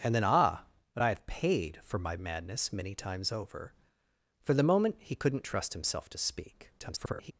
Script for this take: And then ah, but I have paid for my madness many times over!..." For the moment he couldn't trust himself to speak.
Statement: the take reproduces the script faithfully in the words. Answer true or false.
false